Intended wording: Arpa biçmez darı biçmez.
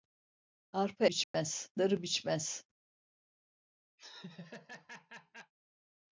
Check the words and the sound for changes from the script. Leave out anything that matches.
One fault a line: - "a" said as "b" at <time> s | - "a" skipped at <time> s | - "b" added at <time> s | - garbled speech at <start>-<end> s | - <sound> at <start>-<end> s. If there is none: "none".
- dropout at 1.2-1.3 s
- laugh at 4.0-5.5 s